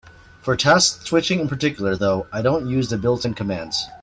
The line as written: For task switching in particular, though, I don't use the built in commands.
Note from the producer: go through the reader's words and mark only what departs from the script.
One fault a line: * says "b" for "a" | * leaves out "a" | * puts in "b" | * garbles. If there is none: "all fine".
all fine